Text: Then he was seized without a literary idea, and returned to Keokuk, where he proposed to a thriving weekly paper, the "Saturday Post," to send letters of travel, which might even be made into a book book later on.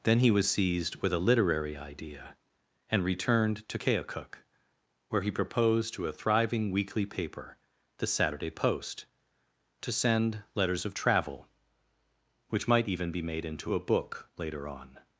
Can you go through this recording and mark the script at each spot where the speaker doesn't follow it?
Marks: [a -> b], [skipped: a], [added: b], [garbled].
Then he was seized [without -> with] a literary idea, and returned to Keokuk, where he proposed to a thriving weekly paper, the "Saturday Post," to send letters of travel, which might even be made into a book [skipped: book] later on.